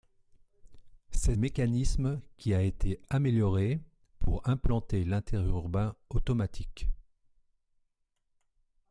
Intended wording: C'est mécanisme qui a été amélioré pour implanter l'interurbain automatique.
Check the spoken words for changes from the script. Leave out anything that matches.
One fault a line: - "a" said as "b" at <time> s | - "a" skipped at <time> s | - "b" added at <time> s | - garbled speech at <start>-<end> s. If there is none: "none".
none